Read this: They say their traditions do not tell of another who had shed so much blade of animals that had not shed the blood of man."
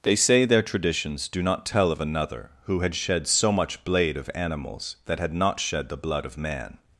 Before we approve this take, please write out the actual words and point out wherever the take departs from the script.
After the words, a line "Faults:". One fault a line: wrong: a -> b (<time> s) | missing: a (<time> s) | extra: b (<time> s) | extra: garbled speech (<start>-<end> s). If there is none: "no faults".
They say their traditions do not tell of another who had shed so much blade of animals that had not shed the blood of man."
Faults:
no faults